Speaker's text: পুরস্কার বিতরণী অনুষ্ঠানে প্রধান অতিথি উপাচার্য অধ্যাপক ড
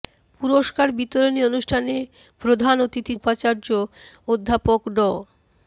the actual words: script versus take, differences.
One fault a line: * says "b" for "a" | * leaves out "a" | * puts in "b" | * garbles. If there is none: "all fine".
all fine